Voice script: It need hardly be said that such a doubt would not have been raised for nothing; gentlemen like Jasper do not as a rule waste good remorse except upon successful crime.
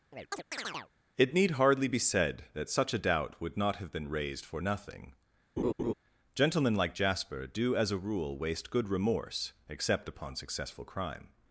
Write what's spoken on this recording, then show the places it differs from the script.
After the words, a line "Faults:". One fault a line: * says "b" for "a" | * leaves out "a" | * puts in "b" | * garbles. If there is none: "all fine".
It need hardly be said that such a doubt would not have been raised for nothing; gentlemen like Jasper do as a rule waste good remorse except upon successful crime.
Faults:
* leaves out "not"